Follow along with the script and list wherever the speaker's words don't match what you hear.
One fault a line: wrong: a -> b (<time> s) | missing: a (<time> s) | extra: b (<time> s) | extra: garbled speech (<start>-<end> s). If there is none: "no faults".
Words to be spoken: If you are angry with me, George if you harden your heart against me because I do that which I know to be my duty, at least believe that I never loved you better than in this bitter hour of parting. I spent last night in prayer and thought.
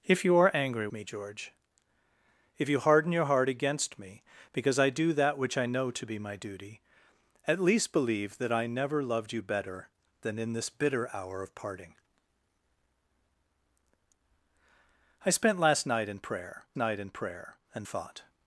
missing: with (0.9 s)
extra: night in prayer (16.7 s)